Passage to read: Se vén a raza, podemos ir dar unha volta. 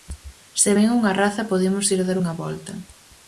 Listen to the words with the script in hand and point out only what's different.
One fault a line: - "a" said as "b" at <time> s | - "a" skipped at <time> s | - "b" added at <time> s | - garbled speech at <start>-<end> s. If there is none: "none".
- "a" said as "unha" at 1.0 s